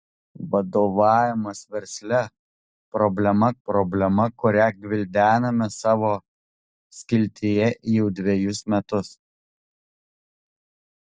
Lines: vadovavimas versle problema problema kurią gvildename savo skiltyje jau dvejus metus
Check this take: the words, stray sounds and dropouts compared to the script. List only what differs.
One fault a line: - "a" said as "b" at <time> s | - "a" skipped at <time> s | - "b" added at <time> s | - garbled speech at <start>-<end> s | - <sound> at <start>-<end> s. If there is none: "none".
none